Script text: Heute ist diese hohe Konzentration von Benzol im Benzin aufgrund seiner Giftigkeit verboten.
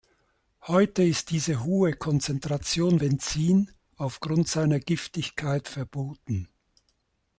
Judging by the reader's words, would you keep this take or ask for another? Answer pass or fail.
fail